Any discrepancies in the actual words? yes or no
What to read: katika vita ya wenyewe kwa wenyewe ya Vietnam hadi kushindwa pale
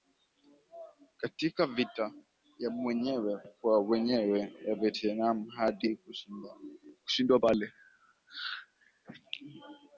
no